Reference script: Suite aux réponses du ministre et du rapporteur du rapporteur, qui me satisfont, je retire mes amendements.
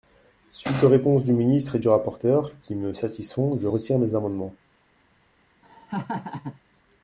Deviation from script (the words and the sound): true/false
true